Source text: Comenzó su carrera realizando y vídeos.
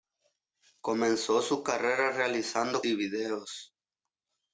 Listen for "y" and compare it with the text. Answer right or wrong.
right